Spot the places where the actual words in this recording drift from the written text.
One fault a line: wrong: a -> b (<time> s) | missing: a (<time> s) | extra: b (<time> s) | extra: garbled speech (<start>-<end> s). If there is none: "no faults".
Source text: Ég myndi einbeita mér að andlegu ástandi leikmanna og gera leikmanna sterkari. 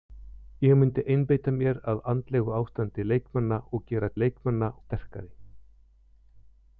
no faults